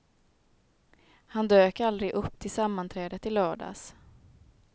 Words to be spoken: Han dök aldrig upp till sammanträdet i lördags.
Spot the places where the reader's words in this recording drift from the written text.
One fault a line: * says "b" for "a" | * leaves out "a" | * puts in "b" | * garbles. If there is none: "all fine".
all fine